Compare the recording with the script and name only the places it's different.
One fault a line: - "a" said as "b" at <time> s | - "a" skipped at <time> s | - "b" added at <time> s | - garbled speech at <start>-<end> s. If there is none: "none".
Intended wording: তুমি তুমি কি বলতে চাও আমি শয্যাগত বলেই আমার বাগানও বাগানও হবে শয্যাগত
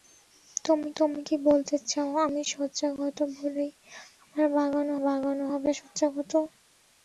none